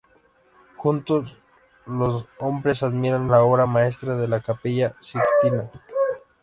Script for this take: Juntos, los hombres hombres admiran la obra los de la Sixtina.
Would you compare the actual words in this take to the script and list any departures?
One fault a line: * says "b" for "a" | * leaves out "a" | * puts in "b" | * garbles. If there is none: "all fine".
* leaves out "hombres"
* says "maestra" for "los"
* puts in "Capilla"